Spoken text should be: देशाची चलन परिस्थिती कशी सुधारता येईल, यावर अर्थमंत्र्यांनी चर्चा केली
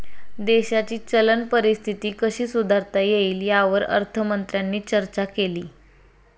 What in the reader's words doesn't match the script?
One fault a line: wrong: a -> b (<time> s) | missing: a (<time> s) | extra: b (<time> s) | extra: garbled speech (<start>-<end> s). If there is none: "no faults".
no faults